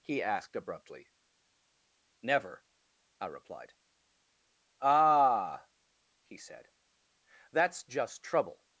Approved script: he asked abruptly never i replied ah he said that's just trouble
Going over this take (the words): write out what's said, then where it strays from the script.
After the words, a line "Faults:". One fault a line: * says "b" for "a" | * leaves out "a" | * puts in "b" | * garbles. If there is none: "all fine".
he asked abruptly never i replied ah he said that's just trouble
Faults:
all fine